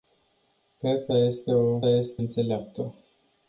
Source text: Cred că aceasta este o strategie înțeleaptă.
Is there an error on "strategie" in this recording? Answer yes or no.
yes